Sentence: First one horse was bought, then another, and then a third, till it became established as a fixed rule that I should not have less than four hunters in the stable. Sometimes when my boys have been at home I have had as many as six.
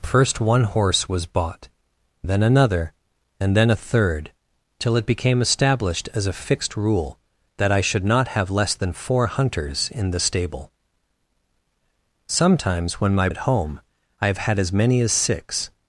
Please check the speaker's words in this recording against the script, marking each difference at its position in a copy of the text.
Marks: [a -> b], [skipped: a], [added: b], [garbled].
First one horse was bought, then another, and then a third, till it became established as a fixed rule that I should not have less than four hunters in the stable. Sometimes when my [skipped: boys have been] at home I have had as many as six.